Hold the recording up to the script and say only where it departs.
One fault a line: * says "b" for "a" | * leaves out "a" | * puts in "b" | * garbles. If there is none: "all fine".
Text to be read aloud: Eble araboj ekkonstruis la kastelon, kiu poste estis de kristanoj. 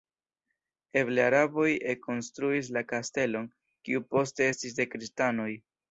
all fine